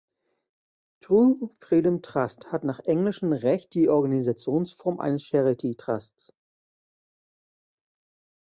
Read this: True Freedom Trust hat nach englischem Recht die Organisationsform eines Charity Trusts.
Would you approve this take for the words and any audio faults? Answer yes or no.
yes